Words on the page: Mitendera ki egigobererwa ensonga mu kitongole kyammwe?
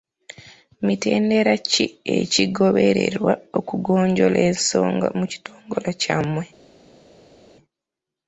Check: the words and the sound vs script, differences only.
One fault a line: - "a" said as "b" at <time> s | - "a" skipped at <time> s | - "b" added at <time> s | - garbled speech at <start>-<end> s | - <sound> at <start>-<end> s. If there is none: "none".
- "okugonjoola" added at 3.6 s